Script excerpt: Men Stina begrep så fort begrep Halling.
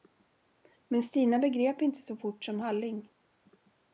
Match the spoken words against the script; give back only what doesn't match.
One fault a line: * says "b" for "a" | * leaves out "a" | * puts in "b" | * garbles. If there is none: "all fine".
* puts in "inte"
* says "som" for "begrep"